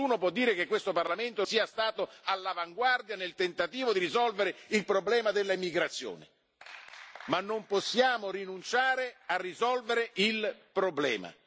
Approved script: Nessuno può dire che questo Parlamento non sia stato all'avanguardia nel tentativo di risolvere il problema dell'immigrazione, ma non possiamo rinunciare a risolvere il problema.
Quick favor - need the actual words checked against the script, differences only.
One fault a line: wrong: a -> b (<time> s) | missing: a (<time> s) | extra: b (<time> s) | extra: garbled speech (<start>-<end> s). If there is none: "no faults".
missing: non (1.4 s)